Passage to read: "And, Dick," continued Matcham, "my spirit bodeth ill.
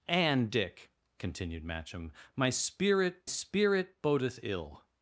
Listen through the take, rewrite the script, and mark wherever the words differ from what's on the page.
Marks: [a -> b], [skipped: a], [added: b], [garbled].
"And, Dick," continued Matcham, "my spirit [added: spirit] bodeth ill.